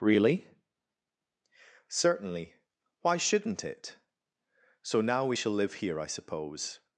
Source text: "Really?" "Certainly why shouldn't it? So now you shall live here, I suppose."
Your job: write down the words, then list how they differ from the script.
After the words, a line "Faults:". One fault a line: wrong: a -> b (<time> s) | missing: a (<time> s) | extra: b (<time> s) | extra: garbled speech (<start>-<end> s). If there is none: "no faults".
"Really?" "Certainly why shouldn't it? So now we shall live here, I suppose."
Faults:
wrong: you -> we (5.2 s)